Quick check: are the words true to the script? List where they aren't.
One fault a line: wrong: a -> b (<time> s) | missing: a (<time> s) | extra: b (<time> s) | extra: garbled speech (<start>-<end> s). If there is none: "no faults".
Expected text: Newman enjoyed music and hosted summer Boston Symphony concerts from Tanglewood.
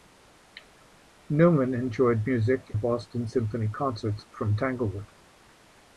missing: and hosted summer (2.7 s)